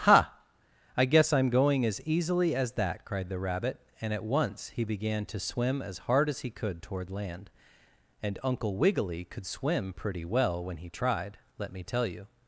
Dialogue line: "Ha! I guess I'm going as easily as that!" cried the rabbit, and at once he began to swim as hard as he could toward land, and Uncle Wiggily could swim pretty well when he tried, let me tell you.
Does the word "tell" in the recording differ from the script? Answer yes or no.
no